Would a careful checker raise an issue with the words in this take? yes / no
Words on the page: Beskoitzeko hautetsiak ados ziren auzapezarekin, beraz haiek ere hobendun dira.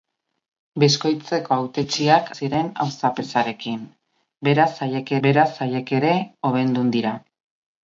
yes